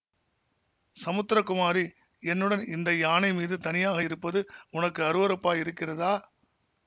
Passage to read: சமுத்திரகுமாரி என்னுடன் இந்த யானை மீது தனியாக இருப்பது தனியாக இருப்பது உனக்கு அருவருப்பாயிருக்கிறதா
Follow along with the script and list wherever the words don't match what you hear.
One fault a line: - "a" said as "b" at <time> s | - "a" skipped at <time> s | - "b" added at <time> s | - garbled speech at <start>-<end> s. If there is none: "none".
- "தனியாக இருப்பது" skipped at 4.4 s